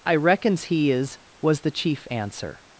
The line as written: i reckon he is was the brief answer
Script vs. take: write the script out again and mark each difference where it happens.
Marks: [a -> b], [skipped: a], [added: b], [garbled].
i [reckon -> reckons] he is was the [brief -> chief] answer